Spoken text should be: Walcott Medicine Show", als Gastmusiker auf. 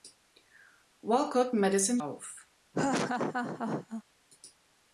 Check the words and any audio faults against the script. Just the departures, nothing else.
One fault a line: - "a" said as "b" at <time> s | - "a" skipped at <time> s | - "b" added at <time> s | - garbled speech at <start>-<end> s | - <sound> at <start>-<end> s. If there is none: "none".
- "Show als Gastmusiker" skipped at 2.0 s
- laugh at 2.7-4.0 s